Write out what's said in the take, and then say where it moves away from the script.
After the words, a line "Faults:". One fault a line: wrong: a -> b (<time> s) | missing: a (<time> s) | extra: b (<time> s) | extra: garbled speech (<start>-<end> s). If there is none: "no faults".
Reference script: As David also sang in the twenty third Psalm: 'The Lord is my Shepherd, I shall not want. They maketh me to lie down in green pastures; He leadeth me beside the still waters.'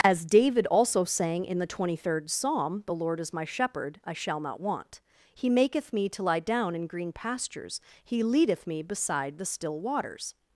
As David also sang in the twenty third Psalm: 'The Lord is my Shepherd, I shall not want. He maketh me to lie down in green pastures; He leadeth me beside the still waters.'
Faults:
wrong: They -> He (5.3 s)